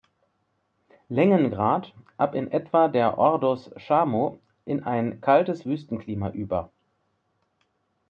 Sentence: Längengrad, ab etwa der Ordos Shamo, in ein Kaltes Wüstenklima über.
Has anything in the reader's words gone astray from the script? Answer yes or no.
yes